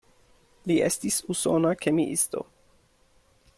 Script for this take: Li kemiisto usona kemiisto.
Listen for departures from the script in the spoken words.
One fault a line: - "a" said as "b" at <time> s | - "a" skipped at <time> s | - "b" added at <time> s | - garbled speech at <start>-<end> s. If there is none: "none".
- "kemiisto" said as "estis" at 0.9 s